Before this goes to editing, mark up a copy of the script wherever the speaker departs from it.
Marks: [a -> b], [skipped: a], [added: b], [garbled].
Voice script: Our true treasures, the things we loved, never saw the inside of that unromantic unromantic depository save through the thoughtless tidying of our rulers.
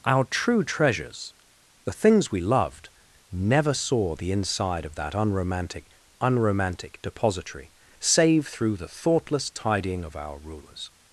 Our true treasures, the things we loved, never saw the inside of that unromantic unromantic depository save through the thoughtless tidying of our rulers.